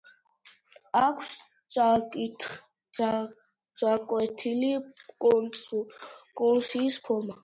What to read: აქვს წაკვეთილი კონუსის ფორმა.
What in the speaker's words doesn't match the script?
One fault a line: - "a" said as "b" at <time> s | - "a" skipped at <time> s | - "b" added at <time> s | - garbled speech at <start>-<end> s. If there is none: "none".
none